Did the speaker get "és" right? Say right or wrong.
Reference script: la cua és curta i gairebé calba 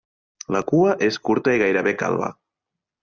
right